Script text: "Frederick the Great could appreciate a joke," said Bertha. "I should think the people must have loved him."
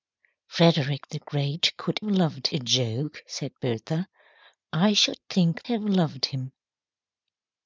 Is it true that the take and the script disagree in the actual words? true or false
true